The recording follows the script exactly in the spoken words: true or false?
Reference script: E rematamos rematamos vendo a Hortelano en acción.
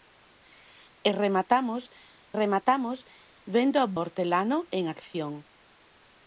true